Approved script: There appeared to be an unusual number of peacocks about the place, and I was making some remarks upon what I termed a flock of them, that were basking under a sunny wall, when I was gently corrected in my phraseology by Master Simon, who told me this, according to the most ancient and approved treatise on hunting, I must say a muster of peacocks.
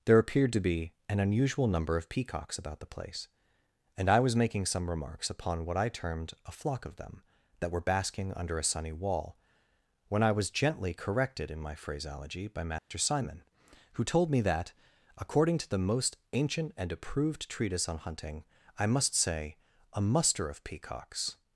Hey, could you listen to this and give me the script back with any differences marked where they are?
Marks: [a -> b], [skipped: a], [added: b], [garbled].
There appeared to be an unusual number of peacocks about the place, and I was making some remarks upon what I termed a flock of them, that were basking under a sunny wall, when I was gently corrected in my phraseology by Master Simon, who told me [this, -> that] according to the most ancient and approved treatise on hunting, I must say a muster of peacocks.